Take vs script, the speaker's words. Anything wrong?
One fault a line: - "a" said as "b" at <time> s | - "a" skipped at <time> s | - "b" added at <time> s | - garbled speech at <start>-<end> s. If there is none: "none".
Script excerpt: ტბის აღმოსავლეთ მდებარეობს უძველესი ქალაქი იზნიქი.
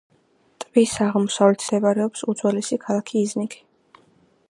none